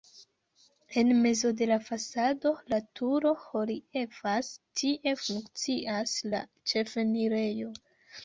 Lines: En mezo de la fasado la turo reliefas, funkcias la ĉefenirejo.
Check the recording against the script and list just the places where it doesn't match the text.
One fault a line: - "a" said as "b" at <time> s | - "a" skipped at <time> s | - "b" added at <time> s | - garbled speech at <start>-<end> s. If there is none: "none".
- "tie" added at 4.8 s